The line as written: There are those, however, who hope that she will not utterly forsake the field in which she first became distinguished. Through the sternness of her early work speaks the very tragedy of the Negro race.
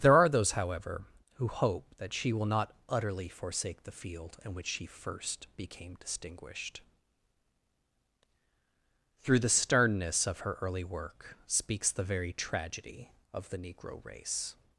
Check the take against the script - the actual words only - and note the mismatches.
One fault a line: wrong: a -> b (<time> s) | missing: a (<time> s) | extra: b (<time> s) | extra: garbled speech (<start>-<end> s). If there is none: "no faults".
no faults